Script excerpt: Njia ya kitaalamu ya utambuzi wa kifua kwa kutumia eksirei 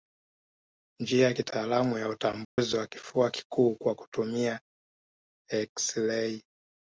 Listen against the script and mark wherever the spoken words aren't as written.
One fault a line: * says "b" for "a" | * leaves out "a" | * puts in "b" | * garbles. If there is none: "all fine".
* puts in "kikuu"